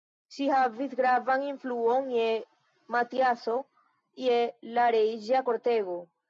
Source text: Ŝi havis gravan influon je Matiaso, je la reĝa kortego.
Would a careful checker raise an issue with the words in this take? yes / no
no